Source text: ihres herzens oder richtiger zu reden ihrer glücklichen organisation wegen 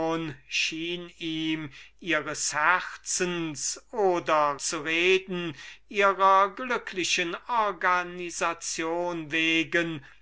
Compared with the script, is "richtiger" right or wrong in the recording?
wrong